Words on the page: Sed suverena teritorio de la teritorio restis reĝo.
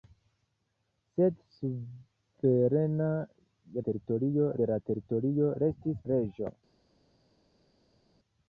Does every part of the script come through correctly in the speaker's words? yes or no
yes